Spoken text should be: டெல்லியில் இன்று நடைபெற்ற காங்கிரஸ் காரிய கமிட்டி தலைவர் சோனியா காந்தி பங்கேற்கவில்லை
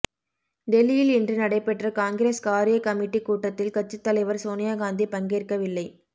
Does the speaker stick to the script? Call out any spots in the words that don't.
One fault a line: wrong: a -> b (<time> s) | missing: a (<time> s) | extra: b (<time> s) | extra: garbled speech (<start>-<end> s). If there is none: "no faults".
extra: கூட்டத்தில் கட்சித் (3.2 s)